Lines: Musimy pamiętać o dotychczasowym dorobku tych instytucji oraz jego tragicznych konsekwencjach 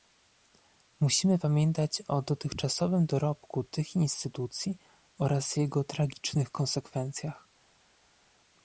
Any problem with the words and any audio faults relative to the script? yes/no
no